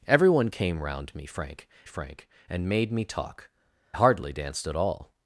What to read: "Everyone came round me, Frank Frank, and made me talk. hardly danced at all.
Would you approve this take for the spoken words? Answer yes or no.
yes